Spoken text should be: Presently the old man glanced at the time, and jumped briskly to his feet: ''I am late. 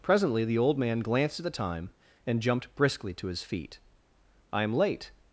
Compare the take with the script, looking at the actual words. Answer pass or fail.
pass